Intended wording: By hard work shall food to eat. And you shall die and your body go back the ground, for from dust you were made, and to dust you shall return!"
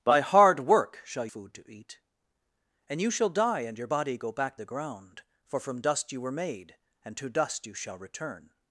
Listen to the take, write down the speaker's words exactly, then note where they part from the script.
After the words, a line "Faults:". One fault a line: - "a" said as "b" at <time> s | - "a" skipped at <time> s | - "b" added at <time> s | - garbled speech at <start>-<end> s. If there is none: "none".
By hard work shall food to eat. And you shall die and your body go back the ground, for from dust you were made, and to dust you shall return!"
Faults:
none